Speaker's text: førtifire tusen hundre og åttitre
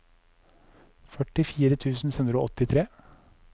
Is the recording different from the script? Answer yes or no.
no